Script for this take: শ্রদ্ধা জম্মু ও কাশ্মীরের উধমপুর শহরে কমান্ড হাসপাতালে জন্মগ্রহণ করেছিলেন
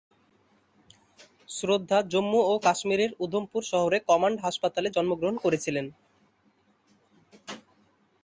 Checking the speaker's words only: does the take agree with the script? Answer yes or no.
yes